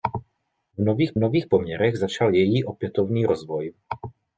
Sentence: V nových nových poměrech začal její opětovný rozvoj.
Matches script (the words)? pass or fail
pass